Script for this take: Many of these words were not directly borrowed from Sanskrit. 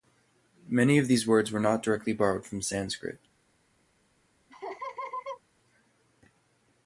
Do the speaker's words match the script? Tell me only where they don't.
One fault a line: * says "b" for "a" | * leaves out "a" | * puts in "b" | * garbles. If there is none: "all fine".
all fine